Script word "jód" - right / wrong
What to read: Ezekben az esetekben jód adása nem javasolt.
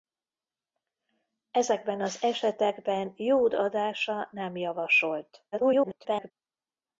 right